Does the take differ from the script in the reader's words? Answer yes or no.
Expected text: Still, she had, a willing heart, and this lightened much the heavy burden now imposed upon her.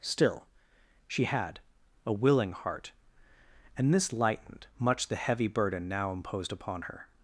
no